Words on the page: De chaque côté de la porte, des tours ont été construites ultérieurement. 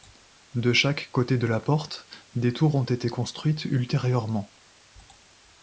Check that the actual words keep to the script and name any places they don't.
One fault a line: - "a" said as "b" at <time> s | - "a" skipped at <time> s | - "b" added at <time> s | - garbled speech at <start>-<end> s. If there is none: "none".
none